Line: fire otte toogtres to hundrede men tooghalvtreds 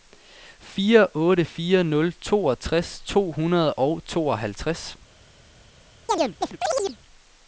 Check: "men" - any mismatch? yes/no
yes